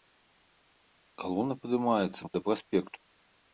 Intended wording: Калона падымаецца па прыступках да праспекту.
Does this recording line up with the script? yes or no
no